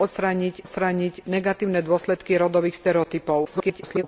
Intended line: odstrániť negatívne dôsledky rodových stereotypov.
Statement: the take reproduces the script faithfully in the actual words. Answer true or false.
false